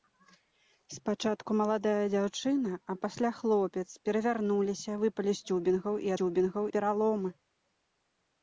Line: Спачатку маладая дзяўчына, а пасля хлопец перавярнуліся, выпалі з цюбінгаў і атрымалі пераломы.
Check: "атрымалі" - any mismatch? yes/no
yes